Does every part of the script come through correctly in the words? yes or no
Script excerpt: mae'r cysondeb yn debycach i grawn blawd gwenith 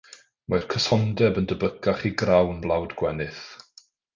yes